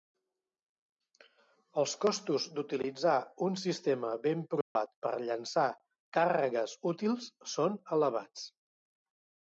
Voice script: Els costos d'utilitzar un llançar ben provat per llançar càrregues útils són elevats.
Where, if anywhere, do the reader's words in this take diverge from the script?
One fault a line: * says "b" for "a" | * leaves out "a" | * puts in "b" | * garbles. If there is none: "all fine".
* says "sistema" for "llançar"